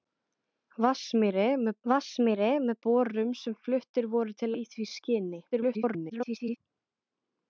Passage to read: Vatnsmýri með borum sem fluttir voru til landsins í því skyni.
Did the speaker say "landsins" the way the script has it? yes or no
no